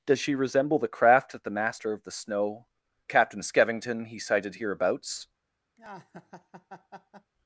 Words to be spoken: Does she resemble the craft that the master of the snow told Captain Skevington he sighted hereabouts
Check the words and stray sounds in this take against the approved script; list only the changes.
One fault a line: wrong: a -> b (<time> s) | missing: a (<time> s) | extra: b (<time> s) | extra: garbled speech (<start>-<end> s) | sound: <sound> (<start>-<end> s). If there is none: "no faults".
missing: told (2.6 s)
sound: laugh (5.8-7.3 s)